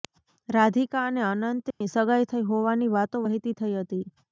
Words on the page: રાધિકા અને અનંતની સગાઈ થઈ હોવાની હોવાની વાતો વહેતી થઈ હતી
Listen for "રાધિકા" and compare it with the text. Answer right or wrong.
right